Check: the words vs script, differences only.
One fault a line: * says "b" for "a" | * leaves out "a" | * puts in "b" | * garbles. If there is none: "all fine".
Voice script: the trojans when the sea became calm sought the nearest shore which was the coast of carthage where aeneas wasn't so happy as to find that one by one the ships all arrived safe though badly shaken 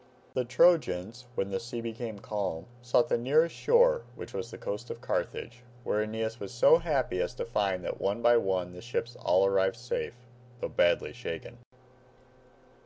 * says "was" for "wasn't"